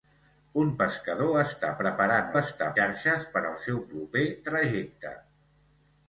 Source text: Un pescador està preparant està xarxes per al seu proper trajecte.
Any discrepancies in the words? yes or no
no